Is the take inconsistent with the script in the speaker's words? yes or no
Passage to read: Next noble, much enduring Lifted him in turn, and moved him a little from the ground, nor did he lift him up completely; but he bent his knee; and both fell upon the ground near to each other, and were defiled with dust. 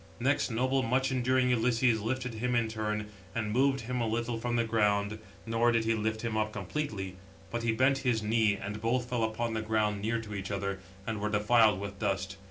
yes